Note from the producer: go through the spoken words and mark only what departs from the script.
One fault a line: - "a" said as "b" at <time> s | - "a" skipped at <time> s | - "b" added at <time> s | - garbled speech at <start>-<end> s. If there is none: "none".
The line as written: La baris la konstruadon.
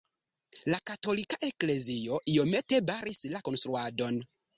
- "katolika eklezio iomete" added at 0.9 s